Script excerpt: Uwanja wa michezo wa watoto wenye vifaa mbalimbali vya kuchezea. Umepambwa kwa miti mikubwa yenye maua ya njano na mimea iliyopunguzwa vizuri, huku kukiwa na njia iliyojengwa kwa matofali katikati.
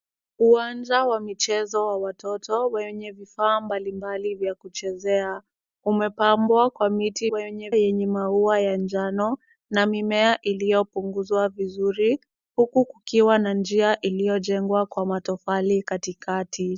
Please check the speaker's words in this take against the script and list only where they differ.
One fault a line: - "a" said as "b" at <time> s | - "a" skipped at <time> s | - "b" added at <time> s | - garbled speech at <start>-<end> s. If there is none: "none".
- "mikubwa" said as "wenye" at 7.3 s